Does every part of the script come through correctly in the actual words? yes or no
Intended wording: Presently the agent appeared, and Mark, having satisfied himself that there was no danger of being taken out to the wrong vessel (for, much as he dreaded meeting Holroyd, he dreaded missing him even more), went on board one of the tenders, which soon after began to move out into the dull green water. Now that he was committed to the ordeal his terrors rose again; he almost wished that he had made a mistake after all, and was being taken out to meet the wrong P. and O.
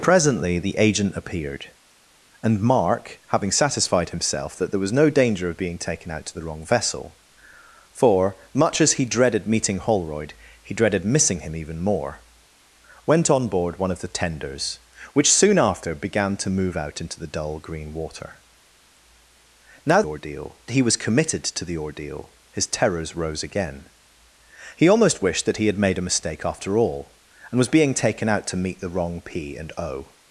no